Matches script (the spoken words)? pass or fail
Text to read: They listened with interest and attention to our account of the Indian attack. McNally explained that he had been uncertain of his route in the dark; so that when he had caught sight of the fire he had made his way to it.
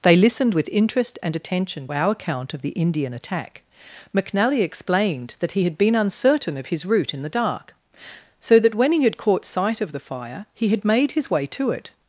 fail